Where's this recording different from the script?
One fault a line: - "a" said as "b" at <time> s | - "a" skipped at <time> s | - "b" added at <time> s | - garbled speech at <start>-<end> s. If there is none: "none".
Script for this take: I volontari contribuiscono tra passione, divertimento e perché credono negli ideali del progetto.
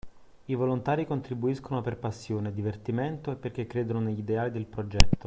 - "tra" said as "per" at 1.8 s